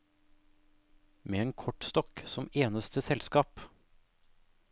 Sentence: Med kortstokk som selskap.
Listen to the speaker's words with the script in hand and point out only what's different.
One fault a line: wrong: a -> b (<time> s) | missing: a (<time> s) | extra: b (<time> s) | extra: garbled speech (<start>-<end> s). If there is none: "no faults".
extra: en (1.4 s)
extra: eneste (2.5 s)